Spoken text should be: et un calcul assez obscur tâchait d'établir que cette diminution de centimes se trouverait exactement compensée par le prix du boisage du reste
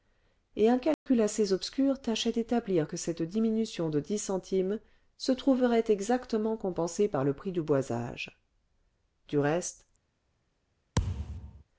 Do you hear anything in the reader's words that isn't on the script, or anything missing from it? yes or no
yes